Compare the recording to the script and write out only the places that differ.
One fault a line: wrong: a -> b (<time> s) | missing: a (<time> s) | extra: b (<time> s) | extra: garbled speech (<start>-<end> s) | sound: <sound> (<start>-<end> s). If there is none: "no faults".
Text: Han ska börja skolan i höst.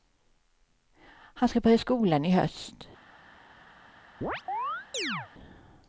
sound: chirp (4.2-5.3 s)